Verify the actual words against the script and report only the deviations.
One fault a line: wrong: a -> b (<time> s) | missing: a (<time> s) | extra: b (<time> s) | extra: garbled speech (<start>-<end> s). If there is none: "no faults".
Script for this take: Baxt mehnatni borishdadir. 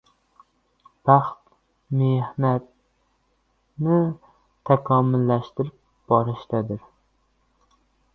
extra: takomillashtirib (4.7 s)